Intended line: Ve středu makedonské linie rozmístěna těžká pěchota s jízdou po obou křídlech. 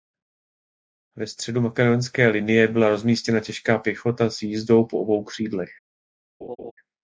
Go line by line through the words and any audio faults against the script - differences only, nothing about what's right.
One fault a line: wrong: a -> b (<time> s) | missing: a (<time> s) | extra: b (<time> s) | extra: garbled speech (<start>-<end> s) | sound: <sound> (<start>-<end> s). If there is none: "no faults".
extra: byla (2.7 s)
sound: laugh (6.4-6.7 s)